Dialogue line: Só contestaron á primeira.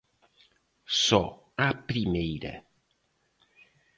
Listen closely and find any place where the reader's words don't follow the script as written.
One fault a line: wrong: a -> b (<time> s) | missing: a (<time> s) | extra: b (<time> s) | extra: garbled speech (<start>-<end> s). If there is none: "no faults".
missing: contestaron (1.2 s)